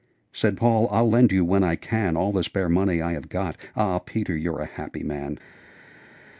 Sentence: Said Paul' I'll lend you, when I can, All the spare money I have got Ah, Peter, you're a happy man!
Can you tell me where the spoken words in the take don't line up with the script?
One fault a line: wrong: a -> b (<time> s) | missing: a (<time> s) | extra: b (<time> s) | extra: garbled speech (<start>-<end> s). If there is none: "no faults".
no faults